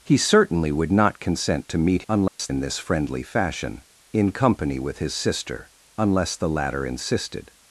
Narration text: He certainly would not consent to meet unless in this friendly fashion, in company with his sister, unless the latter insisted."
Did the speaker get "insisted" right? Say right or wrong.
right